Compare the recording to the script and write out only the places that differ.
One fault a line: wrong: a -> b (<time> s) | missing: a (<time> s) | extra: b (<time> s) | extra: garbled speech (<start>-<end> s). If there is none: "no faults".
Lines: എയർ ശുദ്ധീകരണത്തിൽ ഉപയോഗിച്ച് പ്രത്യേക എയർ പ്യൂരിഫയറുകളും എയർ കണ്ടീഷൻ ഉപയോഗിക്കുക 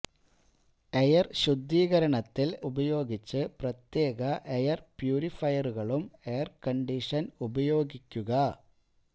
no faults